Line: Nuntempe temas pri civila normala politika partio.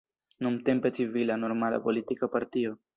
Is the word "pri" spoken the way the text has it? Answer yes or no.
no